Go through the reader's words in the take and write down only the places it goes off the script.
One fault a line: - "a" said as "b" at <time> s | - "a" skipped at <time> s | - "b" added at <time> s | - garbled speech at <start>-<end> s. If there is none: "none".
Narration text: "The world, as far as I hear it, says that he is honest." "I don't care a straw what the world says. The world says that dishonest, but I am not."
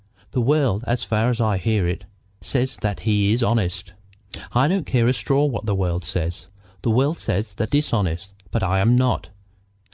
none